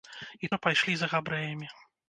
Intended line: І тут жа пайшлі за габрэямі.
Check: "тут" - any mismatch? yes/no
yes